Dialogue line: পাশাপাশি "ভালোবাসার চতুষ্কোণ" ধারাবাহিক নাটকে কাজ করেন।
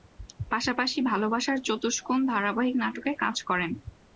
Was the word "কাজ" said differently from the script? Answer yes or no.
no